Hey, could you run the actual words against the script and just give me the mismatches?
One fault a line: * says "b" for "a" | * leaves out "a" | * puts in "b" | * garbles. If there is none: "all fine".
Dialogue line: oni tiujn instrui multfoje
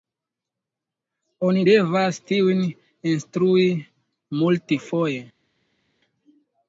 * puts in "devas"